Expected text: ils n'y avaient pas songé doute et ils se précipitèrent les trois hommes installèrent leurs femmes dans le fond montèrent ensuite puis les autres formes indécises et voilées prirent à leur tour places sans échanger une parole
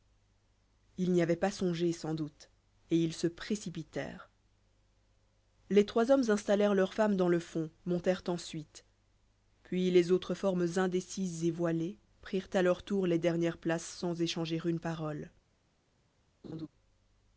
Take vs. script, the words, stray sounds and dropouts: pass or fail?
fail